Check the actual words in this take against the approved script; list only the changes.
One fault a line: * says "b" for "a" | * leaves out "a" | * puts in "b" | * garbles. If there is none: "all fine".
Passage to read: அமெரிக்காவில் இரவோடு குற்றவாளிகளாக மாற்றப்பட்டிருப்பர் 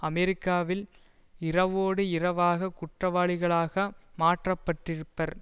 * puts in "இரவாக"